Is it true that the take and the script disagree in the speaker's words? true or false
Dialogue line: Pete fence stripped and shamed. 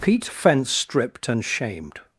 false